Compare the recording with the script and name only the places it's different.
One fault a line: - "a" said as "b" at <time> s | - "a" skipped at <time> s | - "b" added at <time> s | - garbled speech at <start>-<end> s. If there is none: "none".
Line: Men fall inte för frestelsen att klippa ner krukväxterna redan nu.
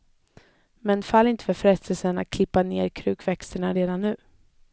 none